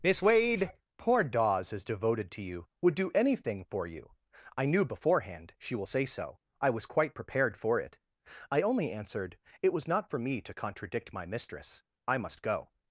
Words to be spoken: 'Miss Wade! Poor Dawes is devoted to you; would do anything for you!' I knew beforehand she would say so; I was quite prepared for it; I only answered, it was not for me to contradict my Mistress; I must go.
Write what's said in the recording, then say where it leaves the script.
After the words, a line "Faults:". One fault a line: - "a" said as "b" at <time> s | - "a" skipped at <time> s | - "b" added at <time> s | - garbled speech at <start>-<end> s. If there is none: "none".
'Miss Wade! Poor Dawes is devoted to you; would do anything for you!' I knew beforehand she will say so; I was quite prepared for it; I only answered, it was not for me to contradict my Mistress; I must go.
Faults:
- "would" said as "will" at 5.8 s